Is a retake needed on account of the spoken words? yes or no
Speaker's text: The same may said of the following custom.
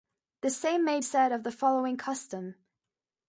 no